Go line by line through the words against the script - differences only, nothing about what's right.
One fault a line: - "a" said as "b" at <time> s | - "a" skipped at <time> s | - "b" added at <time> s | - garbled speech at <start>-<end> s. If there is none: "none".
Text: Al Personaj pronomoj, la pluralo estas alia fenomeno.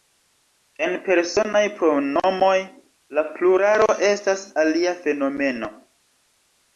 - "Al" said as "En" at 0.8 s